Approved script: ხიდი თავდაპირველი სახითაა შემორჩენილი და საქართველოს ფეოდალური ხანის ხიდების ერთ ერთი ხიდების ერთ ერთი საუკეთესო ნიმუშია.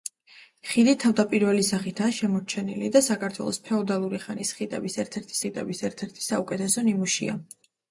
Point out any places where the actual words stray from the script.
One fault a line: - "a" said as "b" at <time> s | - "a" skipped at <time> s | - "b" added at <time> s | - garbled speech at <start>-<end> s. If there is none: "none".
none